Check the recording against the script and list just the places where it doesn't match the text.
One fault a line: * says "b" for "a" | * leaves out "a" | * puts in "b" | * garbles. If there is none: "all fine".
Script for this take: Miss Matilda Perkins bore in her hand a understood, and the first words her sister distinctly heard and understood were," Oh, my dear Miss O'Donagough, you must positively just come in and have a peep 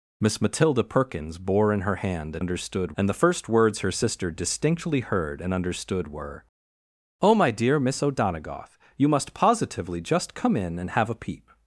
all fine